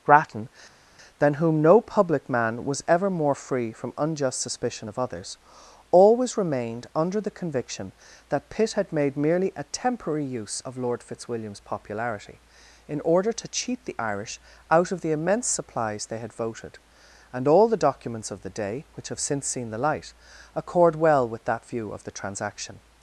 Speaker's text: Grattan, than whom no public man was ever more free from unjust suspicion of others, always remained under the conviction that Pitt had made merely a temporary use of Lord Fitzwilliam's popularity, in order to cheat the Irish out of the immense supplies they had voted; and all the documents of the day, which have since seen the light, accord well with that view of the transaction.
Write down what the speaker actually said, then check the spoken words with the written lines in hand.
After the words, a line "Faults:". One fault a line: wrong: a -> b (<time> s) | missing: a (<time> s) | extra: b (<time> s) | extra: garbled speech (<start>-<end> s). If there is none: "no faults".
Grattan, than whom no public man was ever more free from unjust suspicion of others, always remained under the conviction that Pitt had made merely a temporary use of Lord Fitzwilliam's popularity, in order to cheat the Irish out of the immense supplies they had voted; and all the documents of the day, which have since seen the light, accord well with that view of the transaction.
Faults:
no faults